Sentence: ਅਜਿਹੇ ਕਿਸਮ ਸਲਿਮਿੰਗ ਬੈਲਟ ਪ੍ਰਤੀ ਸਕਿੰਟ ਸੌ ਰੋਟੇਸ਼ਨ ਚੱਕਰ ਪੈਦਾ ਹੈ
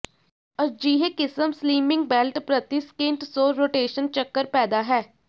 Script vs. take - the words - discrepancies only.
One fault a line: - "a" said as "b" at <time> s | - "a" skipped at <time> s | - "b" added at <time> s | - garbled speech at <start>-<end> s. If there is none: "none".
none